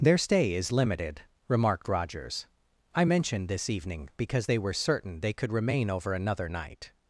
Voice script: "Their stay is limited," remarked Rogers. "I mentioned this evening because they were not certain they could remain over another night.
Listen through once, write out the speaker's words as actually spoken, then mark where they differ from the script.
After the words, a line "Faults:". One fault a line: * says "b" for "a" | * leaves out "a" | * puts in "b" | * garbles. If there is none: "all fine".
"Their stay is limited," remarked Rogers. "I mentioned this evening because they were certain they could remain over another night.
Faults:
* leaves out "not"